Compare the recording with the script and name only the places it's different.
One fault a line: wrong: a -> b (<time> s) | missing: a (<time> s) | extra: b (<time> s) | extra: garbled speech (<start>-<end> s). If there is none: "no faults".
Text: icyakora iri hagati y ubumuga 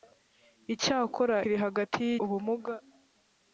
no faults